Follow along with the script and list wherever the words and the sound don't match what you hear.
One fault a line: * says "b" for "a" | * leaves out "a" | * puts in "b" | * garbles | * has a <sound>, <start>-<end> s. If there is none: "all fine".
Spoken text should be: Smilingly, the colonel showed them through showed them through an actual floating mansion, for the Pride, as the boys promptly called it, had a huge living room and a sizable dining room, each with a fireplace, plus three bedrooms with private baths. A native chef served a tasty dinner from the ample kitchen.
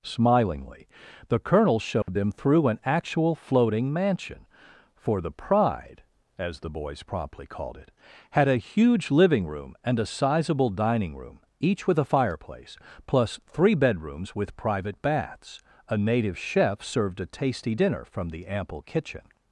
* has a dropout, 2.0-2.1 s
* leaves out "showed them through"